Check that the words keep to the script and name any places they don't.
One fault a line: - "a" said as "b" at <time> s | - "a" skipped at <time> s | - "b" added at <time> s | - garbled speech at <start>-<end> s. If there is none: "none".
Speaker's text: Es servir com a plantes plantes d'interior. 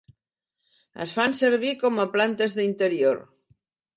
- "fan" added at 1.2 s
- "plantes" skipped at 2.6 s